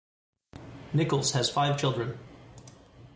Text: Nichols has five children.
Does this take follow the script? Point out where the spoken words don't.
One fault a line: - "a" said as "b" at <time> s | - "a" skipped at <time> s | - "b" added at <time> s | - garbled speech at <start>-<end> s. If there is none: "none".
none